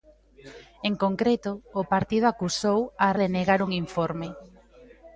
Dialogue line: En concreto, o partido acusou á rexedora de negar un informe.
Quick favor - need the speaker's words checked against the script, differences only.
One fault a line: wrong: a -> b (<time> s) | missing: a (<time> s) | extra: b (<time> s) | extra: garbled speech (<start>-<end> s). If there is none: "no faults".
missing: rexedora (3.1 s)